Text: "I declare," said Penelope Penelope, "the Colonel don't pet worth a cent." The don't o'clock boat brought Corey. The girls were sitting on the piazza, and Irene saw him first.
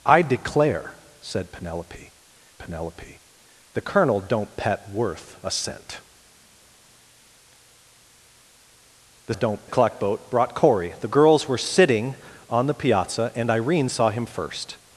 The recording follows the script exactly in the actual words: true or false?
true